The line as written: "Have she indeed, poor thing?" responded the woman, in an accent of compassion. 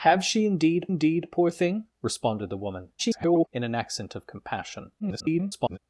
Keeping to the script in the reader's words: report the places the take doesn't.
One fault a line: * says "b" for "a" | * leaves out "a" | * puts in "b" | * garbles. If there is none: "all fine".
* puts in "indeed"
* garbles
* garbles